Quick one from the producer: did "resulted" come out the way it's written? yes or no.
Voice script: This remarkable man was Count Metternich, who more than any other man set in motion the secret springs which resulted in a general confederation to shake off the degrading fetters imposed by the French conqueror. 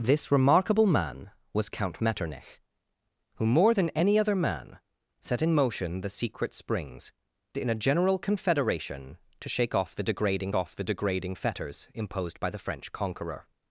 no